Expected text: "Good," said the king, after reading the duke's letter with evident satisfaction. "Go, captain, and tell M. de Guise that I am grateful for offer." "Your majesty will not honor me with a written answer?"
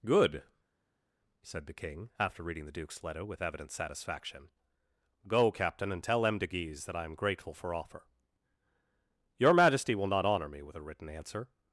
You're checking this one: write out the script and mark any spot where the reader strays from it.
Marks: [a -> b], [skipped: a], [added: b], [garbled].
"Good," said the king, after reading the duke's letter with evident satisfaction. "Go, captain, and tell M. de Guise that I am grateful for offer." "Your majesty will not honor me with a written answer?"